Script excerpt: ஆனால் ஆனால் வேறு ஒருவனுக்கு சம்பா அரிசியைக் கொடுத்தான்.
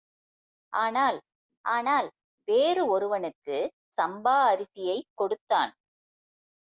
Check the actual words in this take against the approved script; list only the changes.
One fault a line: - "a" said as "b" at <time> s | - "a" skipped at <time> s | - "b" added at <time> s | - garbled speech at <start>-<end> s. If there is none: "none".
none